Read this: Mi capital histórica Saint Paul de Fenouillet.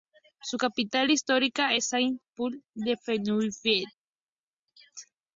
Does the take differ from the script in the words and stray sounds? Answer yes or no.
yes